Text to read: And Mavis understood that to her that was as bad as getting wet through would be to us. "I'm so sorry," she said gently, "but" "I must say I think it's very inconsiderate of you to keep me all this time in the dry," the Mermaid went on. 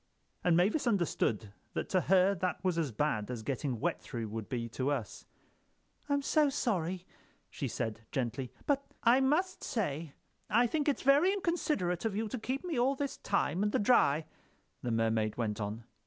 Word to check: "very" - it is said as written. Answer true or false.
true